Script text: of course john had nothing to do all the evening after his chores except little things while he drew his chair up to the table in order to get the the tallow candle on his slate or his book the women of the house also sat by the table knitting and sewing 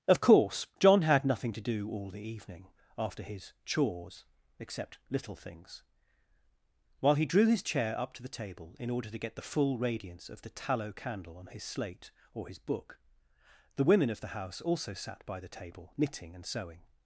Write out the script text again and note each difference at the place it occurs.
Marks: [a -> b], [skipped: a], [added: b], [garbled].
of course john had nothing to do all the evening after his chores except little things while he drew his chair up to the table in order to get the [added: full radiance of] the tallow candle on his slate or his book the women of the house also sat by the table knitting and sewing